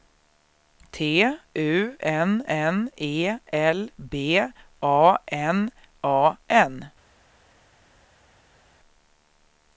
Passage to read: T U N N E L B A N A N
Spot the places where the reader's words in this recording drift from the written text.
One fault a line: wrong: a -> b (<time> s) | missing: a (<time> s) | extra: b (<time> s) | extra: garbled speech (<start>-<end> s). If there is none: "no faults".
no faults